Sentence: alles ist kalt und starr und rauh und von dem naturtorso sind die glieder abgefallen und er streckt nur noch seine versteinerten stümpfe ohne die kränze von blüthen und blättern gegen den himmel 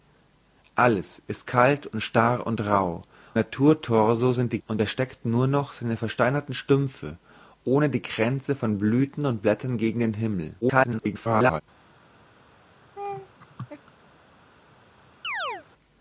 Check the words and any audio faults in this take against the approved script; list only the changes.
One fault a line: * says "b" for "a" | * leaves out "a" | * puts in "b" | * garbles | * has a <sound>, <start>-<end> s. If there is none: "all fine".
* leaves out "und von dem"
* leaves out "glieder abgefallen"
* garbles
* has a laugh, 13.0-13.9 s
* has a chirp, 15.2-15.7 s